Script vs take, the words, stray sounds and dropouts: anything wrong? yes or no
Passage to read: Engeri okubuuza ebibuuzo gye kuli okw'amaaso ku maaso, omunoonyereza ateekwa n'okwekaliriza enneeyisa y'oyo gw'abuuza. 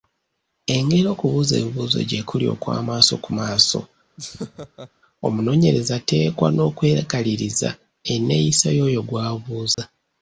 yes